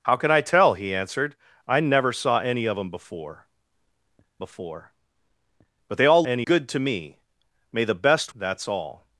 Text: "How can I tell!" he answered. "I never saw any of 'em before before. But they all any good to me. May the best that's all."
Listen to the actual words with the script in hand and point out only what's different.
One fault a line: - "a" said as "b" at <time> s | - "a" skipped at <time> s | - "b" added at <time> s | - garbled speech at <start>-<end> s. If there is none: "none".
none